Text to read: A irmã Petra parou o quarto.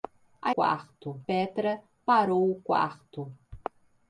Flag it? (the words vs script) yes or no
yes